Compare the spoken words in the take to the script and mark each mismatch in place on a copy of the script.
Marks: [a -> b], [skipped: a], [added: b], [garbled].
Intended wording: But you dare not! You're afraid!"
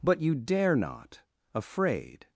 But you dare not! [skipped: You're] afraid!"